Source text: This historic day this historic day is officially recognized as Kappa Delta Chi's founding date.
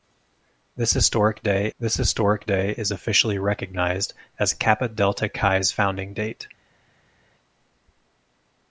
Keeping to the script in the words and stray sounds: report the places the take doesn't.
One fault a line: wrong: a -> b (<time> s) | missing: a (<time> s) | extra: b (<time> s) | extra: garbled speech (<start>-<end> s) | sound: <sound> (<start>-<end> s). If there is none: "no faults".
no faults